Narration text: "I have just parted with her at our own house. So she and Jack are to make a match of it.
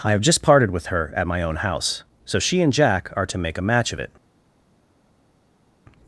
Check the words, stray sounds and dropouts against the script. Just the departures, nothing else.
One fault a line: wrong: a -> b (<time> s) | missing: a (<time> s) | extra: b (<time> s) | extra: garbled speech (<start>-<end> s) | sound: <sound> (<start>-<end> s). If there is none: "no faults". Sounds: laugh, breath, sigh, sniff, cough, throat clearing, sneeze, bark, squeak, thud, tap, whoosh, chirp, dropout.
wrong: our -> my (1.3 s)